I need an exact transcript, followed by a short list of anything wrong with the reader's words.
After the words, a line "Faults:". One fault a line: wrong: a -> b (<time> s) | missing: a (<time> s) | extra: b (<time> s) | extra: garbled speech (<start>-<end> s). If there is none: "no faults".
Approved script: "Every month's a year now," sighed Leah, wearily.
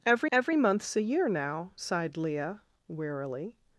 "Every every month's a year now," sighed Leah, wearily.
Faults:
extra: every (0.3 s)